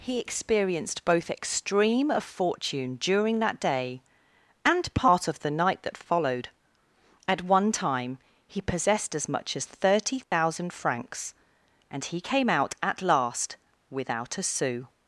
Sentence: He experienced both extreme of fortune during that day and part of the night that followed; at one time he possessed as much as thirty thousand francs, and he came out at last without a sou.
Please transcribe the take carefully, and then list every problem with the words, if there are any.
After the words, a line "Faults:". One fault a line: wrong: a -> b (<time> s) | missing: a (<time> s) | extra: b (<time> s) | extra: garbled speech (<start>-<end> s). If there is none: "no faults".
He experienced both extreme of fortune during that day and part of the night that followed; at one time he possessed as much as thirty thousand francs, and he came out at last without a sou.
Faults:
no faults